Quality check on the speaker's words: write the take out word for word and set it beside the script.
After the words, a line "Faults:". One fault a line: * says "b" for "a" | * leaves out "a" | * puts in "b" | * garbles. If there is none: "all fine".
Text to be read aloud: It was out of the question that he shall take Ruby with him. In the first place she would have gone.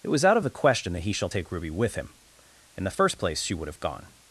It was out of the question that he shall take Ruby with him. In the first place she would have gone.
Faults:
all fine